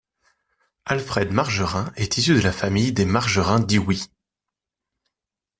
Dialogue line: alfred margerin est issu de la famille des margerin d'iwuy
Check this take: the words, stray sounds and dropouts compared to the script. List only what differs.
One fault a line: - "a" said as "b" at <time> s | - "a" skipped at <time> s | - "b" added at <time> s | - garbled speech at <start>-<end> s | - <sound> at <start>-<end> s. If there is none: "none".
none